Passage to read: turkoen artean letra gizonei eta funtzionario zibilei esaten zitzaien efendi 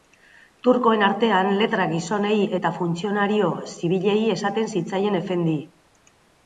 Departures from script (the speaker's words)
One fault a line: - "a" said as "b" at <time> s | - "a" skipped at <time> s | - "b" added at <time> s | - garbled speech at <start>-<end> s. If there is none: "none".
none